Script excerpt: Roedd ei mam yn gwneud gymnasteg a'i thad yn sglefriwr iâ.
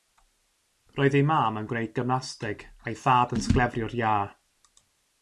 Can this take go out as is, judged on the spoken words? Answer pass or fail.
pass